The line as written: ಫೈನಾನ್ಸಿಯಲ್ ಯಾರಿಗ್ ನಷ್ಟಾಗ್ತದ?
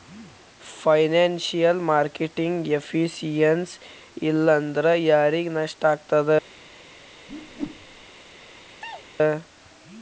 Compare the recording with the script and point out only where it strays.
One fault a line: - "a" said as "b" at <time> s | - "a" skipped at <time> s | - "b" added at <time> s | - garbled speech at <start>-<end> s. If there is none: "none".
- "ಮಾರ್ಕೆಟಿಂಗ್ ಎಫಿಸಿಯನ್ಸಿ ಇಲ್ಲಾಂದ್ರ" added at 1.9 s